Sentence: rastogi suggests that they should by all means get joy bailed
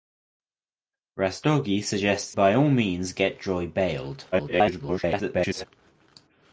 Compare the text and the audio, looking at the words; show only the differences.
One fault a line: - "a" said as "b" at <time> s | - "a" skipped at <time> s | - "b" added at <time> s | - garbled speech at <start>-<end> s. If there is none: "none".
- "that they should" skipped at 2.3 s
- garbled speech at 4.3-5.7 s